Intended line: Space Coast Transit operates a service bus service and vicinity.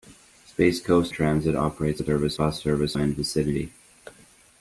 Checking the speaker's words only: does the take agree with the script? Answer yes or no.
yes